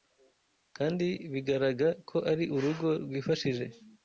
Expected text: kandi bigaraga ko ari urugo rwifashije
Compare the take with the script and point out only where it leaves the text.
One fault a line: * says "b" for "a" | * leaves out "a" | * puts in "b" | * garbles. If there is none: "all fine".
all fine